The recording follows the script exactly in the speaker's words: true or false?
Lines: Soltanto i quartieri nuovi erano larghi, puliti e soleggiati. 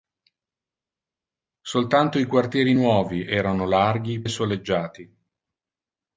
false